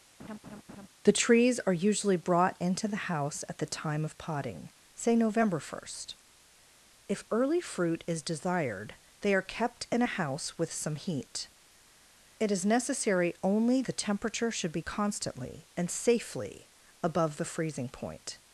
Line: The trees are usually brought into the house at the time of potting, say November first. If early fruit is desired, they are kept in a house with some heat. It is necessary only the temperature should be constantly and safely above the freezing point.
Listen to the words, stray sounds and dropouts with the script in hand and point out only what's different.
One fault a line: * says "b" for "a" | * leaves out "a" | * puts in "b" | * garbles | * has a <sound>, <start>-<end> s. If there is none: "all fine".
* has a laugh, 0.2-0.9 s